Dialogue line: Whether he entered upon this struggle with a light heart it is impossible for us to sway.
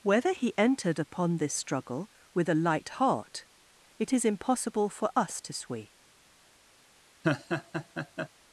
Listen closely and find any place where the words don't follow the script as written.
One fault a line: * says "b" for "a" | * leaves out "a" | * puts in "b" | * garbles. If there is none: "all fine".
all fine